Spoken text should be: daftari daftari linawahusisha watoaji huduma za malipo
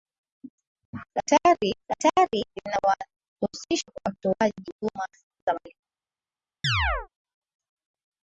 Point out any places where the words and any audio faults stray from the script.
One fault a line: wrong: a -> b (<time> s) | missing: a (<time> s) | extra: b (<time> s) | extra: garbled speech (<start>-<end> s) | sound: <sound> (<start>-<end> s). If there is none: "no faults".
sound: chirp (6.6-7.1 s)